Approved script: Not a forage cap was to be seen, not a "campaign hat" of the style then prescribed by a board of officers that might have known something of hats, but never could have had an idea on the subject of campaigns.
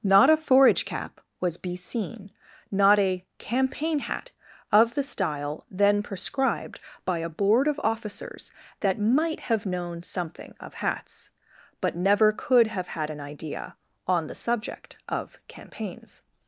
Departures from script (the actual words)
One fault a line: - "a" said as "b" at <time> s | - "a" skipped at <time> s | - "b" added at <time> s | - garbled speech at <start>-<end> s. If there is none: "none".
- "to" skipped at 1.6 s